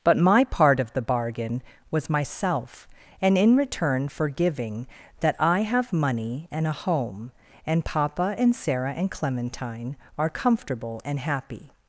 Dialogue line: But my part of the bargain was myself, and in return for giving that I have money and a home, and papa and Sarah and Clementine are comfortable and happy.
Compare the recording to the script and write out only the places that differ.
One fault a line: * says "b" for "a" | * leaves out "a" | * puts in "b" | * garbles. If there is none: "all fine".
all fine